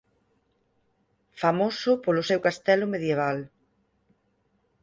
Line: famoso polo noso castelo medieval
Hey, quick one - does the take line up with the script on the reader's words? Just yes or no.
no